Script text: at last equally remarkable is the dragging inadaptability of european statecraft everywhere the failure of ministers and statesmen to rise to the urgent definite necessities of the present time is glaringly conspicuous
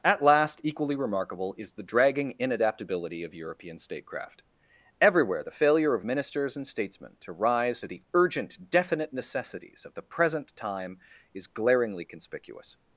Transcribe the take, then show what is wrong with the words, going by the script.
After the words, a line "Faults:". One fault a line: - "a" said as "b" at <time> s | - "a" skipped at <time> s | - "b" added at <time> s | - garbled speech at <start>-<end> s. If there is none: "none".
at last equally remarkable is the dragging inadaptability of european statecraft everywhere the failure of ministers and statesmen to rise to the urgent definite necessities of the present time is glaringly conspicuous
Faults:
none